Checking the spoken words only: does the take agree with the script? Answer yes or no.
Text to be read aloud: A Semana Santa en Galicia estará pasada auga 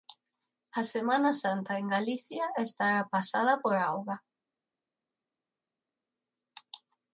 no